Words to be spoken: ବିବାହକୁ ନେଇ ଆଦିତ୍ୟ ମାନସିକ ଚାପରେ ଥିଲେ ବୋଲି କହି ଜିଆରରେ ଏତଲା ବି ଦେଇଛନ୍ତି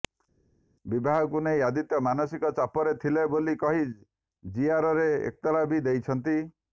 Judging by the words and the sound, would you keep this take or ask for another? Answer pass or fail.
pass